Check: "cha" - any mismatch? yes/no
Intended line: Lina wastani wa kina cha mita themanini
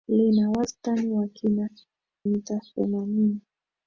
yes